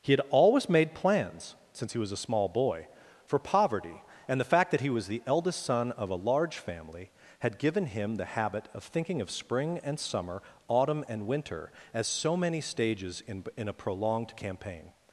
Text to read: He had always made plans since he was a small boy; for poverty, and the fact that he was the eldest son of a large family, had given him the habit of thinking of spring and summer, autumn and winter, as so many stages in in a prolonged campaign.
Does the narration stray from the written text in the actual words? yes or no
no